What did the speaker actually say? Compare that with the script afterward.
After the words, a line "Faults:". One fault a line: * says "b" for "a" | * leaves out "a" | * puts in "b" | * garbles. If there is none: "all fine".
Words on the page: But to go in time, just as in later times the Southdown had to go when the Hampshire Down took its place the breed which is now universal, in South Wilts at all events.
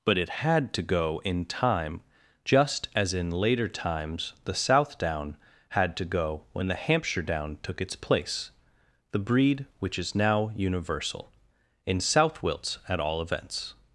But it had to go in time, just as in later times the Southdown had to go when the Hampshire Down took its place the breed which is now universal, in South Wilts at all events.
Faults:
* puts in "it had"